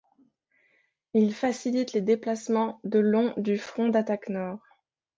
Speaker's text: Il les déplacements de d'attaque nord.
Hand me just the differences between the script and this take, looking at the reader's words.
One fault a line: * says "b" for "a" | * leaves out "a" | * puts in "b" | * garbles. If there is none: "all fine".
* puts in "facilite"
* puts in "long du front"